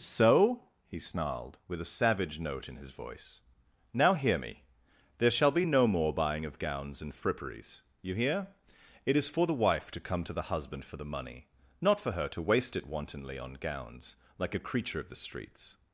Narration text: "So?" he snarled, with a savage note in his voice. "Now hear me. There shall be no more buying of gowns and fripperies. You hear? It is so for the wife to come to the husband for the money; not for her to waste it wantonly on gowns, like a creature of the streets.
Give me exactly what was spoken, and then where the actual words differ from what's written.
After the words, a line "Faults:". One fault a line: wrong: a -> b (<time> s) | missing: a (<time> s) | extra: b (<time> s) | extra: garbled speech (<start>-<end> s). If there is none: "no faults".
"So?" he snarled, with a savage note in his voice. "Now hear me. There shall be no more buying of gowns and fripperies. You hear? It is for the wife to come to the husband for the money; not for her to waste it wantonly on gowns, like a creature of the streets.
Faults:
missing: so (9.3 s)